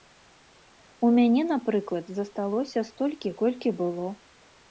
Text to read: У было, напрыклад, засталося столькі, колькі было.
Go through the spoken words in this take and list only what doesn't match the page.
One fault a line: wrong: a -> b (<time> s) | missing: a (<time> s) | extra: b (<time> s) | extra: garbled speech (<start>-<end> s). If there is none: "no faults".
wrong: было -> мяне (1.2 s)